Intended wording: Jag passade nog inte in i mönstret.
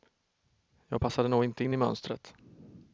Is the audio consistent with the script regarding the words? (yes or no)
yes